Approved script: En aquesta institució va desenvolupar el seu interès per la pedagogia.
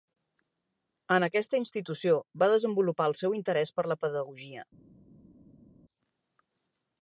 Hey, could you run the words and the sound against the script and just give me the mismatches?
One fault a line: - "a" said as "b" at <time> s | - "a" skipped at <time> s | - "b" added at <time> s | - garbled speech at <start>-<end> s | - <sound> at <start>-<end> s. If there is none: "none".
none